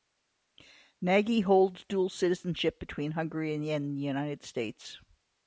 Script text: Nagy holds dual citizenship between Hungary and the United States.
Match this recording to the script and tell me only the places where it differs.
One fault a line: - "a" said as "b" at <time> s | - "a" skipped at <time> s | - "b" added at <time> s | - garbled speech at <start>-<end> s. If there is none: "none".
none